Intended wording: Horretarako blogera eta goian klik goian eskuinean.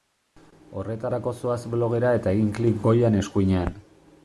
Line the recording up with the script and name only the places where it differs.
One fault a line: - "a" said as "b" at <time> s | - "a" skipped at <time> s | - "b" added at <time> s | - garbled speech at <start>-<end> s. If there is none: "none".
- "zoaz" added at 1.4 s
- "goian" said as "egin" at 2.4 s